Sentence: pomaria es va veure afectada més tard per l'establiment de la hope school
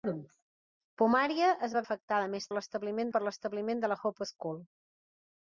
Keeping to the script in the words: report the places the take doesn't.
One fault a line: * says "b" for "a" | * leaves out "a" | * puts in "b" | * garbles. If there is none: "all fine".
* leaves out "veure"
* says "l'establiment" for "tard"